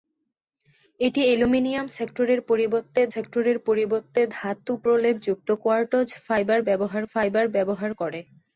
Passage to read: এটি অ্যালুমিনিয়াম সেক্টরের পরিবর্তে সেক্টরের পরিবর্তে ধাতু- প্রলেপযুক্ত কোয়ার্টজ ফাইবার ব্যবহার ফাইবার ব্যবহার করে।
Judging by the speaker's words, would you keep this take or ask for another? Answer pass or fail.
pass